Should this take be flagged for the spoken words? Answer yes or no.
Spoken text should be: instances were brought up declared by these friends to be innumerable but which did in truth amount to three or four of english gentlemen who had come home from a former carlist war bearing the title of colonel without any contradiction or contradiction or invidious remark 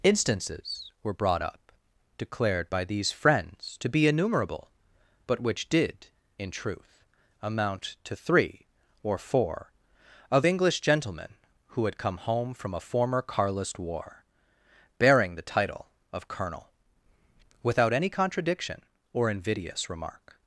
yes